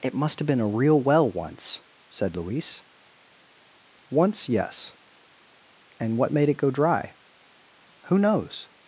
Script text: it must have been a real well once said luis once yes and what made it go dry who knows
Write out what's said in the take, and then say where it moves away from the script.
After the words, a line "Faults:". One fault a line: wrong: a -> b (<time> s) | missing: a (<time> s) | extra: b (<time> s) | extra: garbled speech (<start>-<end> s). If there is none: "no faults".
it must have been a real well once said luis once yes and what made it go dry who knows
Faults:
no faults